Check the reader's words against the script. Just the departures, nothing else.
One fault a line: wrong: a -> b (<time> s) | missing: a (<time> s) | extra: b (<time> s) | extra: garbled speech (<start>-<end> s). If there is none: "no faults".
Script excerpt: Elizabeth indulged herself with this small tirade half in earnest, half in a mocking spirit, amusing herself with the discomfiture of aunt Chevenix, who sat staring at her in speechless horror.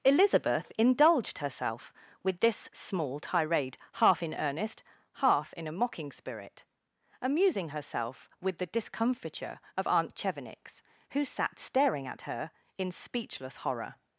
no faults